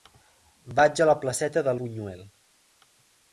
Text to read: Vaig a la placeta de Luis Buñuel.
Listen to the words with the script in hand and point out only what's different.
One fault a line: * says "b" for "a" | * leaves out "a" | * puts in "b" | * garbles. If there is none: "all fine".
* leaves out "Luis"